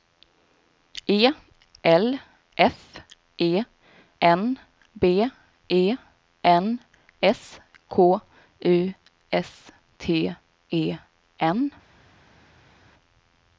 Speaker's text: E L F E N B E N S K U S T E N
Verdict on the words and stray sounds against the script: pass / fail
pass